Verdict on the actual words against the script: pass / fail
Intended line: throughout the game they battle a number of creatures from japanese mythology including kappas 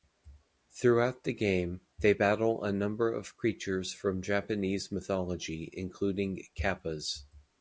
pass